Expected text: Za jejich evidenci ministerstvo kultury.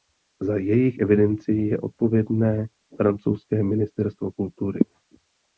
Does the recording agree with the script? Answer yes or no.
no